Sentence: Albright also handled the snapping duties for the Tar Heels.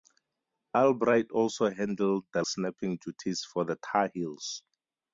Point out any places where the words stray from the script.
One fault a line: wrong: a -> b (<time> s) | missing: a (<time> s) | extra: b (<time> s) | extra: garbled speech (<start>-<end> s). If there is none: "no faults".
no faults